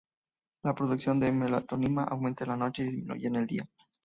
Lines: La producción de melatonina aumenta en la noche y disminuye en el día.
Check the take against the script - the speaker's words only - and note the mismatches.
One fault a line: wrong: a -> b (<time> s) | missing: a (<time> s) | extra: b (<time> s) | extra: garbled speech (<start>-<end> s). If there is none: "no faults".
no faults